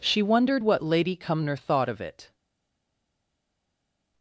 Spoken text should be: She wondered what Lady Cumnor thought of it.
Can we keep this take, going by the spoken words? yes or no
yes